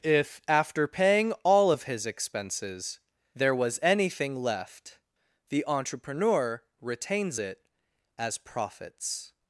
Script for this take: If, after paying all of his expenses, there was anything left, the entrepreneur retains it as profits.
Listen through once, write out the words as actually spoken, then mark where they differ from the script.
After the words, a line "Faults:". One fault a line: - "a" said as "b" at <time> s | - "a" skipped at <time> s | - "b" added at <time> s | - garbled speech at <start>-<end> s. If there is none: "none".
If, after paying all of his expenses, there was anything left, the entrepreneur retains it as profits.
Faults:
none